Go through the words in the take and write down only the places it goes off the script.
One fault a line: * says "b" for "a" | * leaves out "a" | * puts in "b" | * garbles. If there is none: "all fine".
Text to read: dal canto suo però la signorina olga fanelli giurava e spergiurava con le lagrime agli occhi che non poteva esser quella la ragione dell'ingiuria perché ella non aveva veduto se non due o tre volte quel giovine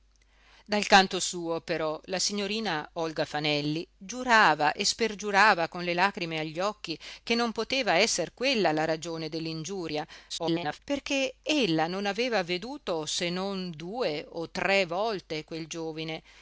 * garbles